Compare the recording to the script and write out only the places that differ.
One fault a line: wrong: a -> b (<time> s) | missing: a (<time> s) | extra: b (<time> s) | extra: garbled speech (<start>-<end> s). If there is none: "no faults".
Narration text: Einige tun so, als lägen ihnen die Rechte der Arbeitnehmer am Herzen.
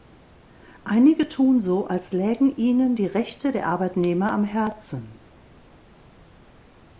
no faults